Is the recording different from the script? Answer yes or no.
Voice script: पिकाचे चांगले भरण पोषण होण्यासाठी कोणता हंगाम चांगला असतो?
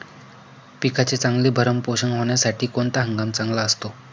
no